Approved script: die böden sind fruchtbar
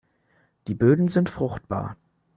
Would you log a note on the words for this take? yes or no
no